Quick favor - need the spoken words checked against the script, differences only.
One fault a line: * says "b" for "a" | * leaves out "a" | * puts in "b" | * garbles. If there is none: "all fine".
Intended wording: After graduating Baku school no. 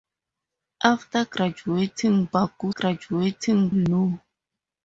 * says "graduating" for "school"